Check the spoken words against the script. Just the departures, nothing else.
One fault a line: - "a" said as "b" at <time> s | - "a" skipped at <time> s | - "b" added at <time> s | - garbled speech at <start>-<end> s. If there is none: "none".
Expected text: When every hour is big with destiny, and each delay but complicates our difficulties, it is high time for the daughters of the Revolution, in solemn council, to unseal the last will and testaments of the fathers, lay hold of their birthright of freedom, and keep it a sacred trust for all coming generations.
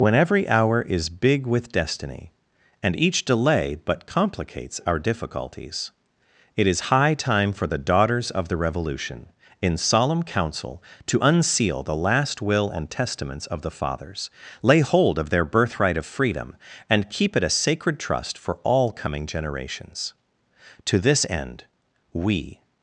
- "To this end we" added at 20.9 s